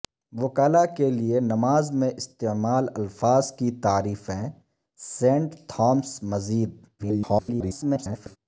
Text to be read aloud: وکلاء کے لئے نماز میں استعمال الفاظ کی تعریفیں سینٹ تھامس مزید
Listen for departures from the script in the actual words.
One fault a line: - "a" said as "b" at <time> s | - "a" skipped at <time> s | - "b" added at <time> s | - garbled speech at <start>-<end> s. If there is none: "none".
- garbled speech at 7.0-8.4 s